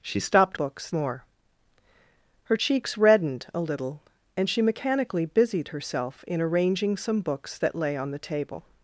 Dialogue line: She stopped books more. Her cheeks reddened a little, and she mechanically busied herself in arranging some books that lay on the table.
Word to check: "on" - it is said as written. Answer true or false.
true